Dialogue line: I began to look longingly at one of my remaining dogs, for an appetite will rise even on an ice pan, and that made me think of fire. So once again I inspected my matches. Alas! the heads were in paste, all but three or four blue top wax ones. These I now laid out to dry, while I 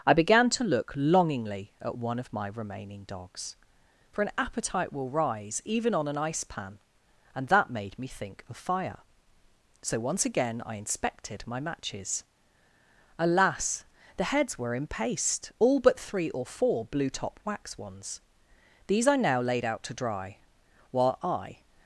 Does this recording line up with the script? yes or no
yes